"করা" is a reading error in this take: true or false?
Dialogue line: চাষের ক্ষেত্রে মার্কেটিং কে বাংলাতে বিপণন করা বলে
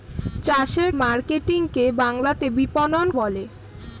true